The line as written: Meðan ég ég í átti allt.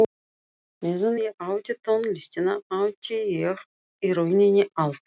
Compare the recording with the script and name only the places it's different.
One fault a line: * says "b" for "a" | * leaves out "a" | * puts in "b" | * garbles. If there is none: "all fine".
* puts in "átti tónlistina átti"
* says "rauninni" for "átti"